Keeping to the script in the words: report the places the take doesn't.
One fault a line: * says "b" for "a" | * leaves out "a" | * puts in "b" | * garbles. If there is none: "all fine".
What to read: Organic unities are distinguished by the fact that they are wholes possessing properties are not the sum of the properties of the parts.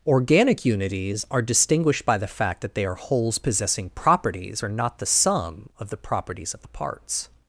all fine